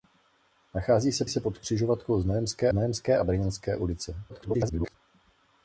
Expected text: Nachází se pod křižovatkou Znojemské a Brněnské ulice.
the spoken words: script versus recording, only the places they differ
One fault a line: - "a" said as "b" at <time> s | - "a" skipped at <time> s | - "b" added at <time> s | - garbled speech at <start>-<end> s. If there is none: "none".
- "se" added at 1.3 s
- "Znojemské" added at 2.7 s
- garbled speech at 4.3-4.9 s